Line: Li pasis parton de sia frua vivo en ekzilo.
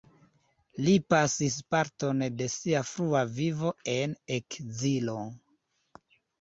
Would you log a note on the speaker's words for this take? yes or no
no